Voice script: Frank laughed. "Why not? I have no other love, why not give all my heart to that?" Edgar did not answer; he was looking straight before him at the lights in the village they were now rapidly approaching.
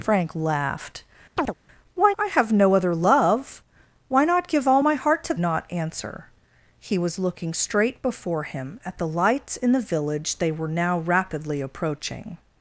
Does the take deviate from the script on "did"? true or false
true